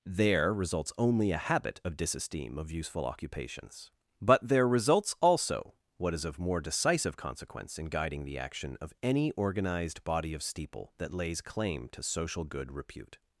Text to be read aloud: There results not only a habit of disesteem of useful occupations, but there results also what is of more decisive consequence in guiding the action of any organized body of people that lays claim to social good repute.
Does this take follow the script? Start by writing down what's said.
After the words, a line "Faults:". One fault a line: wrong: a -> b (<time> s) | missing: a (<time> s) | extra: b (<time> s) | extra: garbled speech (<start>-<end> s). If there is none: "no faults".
There results only a habit of disesteem of useful occupations, but there results also what is of more decisive consequence in guiding the action of any organized body of steeple that lays claim to social good repute.
Faults:
missing: not (0.9 s)
wrong: people -> steeple (10.4 s)